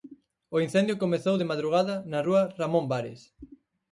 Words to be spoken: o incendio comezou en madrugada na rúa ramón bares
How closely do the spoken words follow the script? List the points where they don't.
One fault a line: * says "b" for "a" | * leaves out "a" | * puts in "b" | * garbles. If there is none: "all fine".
* says "de" for "en"